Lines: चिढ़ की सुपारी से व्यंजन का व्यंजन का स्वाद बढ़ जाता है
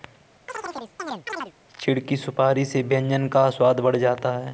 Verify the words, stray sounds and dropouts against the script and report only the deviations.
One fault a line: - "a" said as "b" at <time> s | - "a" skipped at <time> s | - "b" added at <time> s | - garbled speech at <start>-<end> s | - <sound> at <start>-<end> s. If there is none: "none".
- chirp at 0.5-1.5 s
- "व्यंजन का" skipped at 3.5 s